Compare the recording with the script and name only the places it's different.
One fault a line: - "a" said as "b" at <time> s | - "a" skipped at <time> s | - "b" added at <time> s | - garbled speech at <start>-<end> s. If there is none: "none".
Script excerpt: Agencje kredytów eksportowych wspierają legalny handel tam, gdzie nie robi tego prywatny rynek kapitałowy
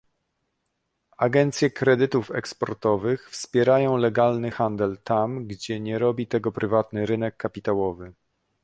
none